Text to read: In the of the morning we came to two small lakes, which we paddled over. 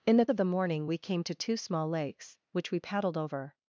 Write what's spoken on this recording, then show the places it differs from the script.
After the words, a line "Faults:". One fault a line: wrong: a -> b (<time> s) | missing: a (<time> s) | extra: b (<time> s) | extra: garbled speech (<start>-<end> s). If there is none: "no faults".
In the of the morning we came to two small lakes, which we paddled over.
Faults:
no faults